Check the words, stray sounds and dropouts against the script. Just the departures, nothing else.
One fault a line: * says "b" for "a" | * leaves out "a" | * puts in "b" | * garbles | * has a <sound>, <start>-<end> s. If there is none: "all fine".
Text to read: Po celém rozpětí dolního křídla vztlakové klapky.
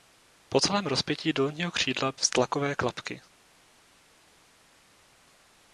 all fine